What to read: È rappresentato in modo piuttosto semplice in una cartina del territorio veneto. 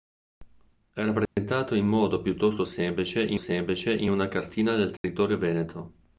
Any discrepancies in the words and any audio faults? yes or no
yes